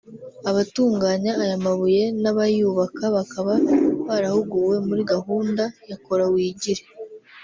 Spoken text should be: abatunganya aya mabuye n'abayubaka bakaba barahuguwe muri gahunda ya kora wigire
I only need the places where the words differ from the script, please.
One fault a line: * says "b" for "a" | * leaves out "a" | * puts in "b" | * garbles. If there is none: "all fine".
all fine